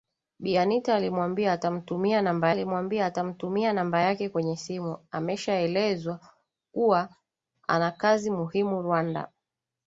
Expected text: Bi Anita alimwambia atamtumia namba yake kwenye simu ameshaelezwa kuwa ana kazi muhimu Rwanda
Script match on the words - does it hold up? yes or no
no